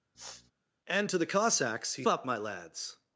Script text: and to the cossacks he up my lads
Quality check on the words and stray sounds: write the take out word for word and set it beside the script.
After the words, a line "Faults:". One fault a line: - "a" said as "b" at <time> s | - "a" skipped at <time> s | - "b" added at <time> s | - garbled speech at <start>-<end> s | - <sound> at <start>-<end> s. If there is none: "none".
and to the cossacks he up my lads
Faults:
- sniff at 0.1-0.5 s